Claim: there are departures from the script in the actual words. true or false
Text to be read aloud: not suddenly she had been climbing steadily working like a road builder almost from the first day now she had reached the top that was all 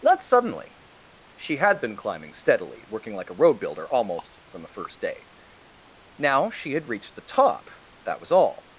false